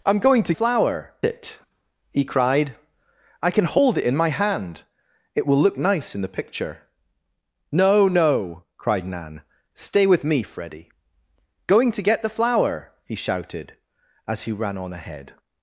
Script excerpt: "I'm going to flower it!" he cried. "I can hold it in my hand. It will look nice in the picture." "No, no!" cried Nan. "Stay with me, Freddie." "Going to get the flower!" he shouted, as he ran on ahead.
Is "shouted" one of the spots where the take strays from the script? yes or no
no